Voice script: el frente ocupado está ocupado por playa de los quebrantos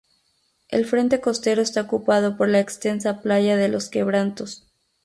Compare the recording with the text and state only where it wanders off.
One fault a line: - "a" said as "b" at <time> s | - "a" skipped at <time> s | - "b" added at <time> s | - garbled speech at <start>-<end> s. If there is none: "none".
- "ocupado" said as "costero" at 1.2 s
- "la extensa" added at 2.5 s